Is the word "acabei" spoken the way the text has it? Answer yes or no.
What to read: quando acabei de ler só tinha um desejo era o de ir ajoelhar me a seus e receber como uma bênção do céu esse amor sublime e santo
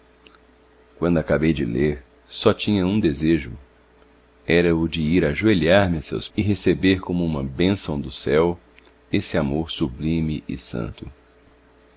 yes